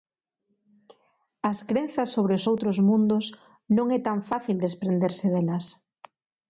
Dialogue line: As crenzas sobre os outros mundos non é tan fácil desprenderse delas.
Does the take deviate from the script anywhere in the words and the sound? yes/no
no